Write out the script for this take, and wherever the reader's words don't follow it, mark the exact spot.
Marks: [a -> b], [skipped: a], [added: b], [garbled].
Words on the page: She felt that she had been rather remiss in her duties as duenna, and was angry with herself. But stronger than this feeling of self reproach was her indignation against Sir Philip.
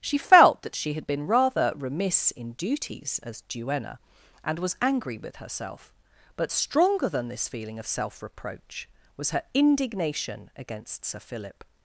She felt that she had been rather remiss in [skipped: her] duties as duenna, and was angry with herself. But stronger than this feeling of self reproach was her indignation against Sir Philip.